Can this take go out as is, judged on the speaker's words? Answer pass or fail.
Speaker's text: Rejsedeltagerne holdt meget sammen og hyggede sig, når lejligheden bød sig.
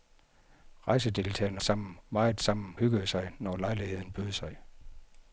fail